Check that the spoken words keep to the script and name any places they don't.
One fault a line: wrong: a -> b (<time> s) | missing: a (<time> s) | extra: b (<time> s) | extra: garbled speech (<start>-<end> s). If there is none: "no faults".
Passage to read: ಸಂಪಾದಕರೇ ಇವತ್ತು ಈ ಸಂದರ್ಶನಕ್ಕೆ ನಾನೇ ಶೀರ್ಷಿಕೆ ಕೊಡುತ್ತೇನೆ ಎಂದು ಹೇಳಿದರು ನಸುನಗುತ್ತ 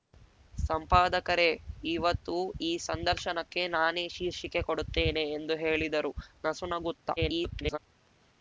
extra: garbled speech (7.2-7.8 s)